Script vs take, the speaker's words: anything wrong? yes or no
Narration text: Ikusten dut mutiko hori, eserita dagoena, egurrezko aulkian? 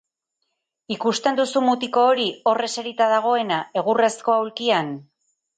yes